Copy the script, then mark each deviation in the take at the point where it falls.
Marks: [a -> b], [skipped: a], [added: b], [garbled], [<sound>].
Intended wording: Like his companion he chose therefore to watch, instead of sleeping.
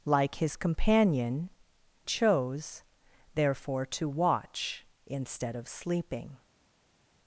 Like his companion [skipped: he] chose therefore to watch, instead of sleeping.